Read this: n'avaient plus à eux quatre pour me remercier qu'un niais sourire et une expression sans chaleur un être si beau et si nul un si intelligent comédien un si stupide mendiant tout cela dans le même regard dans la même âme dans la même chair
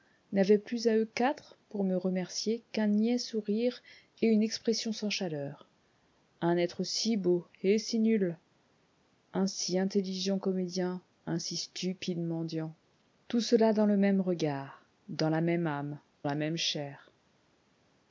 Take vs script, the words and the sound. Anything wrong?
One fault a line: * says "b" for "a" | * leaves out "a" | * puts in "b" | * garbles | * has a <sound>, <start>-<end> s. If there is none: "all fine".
* leaves out "dans"